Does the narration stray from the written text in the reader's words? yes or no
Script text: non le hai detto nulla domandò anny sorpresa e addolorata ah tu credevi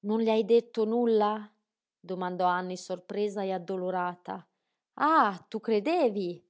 no